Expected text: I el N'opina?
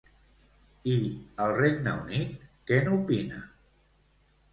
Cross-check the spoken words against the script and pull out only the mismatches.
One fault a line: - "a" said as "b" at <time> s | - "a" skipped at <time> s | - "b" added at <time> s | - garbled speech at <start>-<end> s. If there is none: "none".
- "Regne Unit què" added at 1.6 s